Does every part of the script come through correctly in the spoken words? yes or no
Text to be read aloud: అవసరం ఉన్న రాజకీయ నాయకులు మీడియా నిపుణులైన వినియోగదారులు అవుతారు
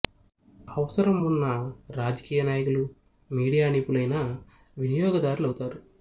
yes